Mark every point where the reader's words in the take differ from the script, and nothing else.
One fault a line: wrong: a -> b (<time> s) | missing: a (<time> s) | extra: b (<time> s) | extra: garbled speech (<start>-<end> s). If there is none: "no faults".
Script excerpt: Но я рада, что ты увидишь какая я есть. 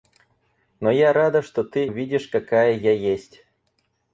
no faults